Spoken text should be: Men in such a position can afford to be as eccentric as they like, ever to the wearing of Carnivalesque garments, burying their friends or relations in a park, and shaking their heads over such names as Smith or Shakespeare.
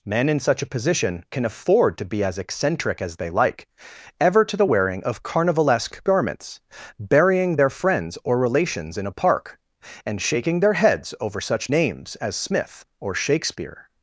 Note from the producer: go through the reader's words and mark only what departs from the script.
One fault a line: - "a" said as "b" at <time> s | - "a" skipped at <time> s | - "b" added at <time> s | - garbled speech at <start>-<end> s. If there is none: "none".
none